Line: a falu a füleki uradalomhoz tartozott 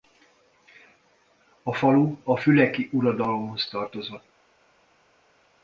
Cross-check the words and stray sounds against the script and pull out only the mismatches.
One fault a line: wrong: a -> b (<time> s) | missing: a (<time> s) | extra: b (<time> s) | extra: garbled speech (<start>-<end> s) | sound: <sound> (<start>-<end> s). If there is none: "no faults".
no faults